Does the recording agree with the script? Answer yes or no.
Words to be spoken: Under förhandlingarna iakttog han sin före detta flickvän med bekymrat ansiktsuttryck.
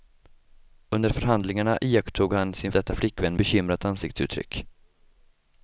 no